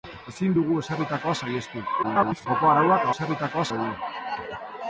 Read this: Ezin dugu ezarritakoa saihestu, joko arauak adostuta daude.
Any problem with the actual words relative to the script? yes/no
yes